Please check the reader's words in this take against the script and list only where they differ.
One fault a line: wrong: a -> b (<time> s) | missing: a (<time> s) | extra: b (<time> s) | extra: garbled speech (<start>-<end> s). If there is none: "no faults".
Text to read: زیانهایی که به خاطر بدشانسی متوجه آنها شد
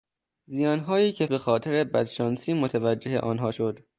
no faults